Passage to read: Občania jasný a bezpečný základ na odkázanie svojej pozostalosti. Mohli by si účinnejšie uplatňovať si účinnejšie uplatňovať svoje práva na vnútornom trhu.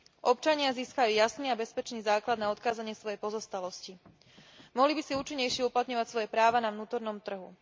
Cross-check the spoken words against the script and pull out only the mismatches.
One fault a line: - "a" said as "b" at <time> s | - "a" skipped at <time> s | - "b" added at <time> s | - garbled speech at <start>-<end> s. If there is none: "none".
- "získajú" added at 0.7 s
- "si účinnejšie uplatňovať" skipped at 6.1 s